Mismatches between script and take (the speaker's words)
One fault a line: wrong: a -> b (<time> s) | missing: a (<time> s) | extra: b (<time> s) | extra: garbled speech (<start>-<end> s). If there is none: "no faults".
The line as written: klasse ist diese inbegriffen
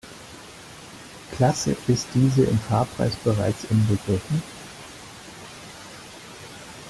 extra: im fahrpreis bereits (2.4 s)